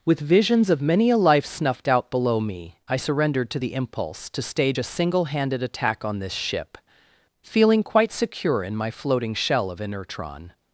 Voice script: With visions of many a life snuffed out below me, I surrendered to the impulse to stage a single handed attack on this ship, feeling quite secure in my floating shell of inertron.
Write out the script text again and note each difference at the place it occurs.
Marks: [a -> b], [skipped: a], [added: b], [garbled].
With visions of many a life snuffed out below me, I surrendered to the impulse to stage a single handed attack on this ship, feeling quite secure in my floating shell of inertron.